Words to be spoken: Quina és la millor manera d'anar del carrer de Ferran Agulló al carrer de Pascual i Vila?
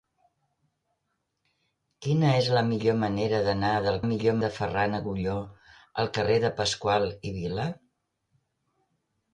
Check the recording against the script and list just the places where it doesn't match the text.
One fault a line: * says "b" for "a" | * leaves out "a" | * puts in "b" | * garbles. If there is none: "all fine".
* says "millor" for "carrer"